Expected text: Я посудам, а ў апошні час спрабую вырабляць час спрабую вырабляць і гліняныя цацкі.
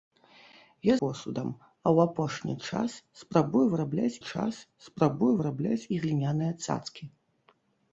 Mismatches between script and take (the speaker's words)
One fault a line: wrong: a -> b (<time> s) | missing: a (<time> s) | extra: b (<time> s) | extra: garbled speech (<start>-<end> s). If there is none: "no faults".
no faults